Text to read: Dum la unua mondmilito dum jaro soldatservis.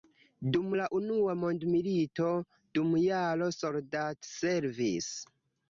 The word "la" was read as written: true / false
true